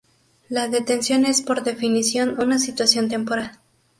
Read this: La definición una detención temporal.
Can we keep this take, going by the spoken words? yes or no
no